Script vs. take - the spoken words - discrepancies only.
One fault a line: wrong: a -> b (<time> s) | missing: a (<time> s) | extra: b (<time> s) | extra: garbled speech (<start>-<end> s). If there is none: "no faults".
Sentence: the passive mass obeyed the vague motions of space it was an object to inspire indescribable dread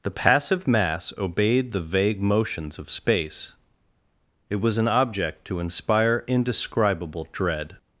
no faults